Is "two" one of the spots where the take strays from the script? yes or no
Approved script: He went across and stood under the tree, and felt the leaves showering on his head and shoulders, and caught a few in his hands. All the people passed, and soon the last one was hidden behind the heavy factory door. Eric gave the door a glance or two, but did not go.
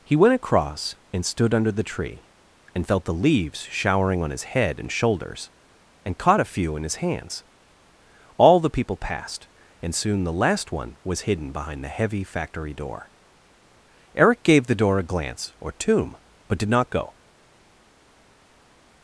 yes